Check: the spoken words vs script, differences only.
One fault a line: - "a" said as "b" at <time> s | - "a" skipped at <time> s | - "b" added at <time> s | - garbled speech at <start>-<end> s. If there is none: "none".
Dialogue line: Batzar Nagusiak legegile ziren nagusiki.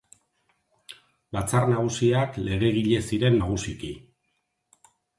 none